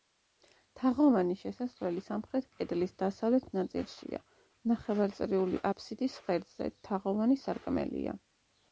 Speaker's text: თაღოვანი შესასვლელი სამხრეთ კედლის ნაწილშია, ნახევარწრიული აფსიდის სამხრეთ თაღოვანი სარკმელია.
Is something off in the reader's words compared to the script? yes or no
yes